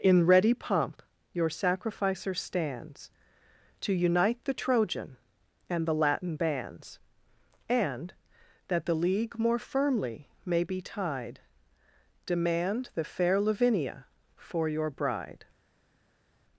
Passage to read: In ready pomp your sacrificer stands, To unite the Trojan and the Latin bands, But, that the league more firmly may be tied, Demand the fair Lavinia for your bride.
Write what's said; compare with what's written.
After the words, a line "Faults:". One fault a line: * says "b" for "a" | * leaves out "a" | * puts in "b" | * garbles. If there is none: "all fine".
In ready pomp your sacrificer stands, To unite the Trojan and the Latin bands, And, that the league more firmly may be tied, Demand the fair Lavinia for your bride.
Faults:
* says "And" for "But"